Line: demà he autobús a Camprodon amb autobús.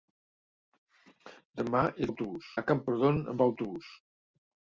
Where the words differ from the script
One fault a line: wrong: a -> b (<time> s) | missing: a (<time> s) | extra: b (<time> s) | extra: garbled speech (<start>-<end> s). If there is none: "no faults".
no faults